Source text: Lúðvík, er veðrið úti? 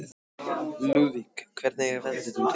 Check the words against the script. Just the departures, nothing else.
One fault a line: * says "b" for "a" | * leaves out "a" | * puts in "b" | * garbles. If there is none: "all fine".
* puts in "hvernig"